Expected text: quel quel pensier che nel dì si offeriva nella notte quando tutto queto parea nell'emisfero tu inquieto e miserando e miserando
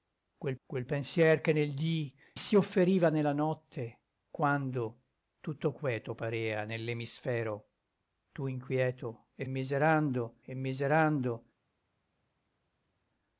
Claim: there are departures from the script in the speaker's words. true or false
false